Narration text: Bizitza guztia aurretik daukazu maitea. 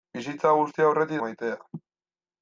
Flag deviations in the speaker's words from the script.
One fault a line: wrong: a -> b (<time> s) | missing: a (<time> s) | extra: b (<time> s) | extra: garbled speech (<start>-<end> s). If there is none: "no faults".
missing: daukazu (1.2 s)